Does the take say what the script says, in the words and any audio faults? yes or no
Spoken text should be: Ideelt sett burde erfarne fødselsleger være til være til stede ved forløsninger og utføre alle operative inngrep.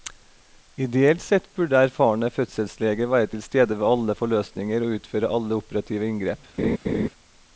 no